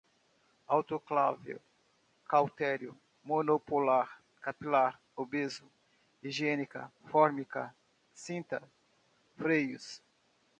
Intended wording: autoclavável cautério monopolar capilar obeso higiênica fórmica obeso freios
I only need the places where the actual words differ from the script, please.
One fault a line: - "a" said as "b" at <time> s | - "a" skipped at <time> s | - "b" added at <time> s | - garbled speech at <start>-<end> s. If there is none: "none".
- "obeso" said as "cinta" at 8.1 s